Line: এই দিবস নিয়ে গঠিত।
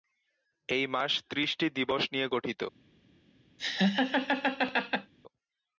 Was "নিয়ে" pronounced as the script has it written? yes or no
yes